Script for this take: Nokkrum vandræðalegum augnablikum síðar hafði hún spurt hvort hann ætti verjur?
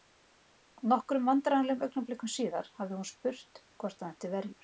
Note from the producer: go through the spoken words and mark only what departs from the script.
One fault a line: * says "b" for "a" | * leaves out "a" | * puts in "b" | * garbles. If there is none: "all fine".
all fine